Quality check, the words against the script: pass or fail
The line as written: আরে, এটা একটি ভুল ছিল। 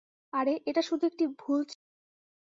fail